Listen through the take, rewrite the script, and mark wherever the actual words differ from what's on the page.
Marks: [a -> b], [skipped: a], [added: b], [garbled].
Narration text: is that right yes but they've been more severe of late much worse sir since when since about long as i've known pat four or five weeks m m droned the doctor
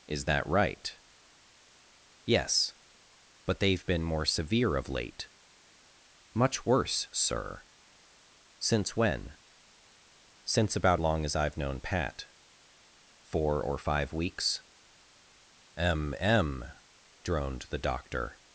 is that right yes but they've been more severe of late much worse sir since when since about long as i've known pat four or five weeks m m droned the doctor